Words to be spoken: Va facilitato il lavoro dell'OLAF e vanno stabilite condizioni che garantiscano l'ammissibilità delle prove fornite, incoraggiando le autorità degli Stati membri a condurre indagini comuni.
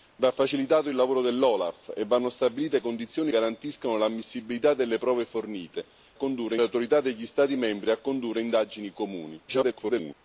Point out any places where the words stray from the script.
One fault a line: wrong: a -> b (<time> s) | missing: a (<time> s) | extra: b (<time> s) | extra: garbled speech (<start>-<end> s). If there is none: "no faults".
missing: che (3.3 s)
wrong: incoraggiando -> condurre (6.1 s)
extra: garbled speech (9.5-10.1 s)